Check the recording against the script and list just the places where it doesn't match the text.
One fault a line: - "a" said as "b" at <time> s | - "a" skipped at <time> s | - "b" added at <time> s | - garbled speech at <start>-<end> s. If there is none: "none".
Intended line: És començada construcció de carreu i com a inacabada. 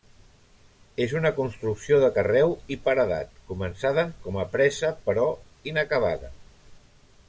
- "començada" said as "una" at 1.2 s
- "paredat començada" added at 2.9 s
- "presa però" added at 4.6 s